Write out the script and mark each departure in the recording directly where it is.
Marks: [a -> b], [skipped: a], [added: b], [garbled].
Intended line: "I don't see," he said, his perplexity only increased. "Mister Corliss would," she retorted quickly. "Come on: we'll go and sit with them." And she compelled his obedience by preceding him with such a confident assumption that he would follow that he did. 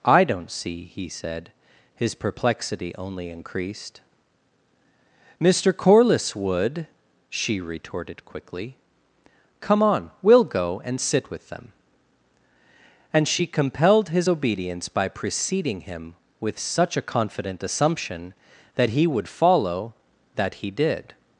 "I don't see," he said, his perplexity only increased. "Mister Corliss would," she retorted quickly. "Come on: we'll go and sit with them." And she compelled his obedience by preceding him with such a confident assumption that he would follow that he did.